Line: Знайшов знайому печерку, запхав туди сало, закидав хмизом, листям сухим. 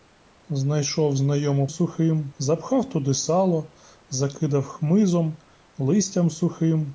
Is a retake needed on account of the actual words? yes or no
yes